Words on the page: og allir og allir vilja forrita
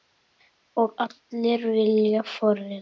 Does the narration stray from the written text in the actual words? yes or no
yes